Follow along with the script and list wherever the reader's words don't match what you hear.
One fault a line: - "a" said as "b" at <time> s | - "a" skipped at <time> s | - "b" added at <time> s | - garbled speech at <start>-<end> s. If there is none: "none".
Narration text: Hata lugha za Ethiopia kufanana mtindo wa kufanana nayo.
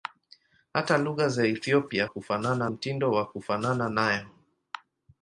none